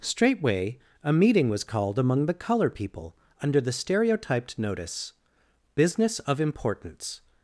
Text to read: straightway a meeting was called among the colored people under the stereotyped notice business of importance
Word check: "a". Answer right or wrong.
right